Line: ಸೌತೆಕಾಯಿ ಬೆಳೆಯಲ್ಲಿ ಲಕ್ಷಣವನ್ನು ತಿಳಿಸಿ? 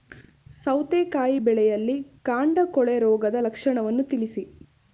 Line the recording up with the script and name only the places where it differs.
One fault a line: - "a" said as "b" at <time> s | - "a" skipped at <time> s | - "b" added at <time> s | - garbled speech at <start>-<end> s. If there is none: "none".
- "ಕಾಂಡ ಕೊಳೆ ರೋಗದ" added at 2.2 s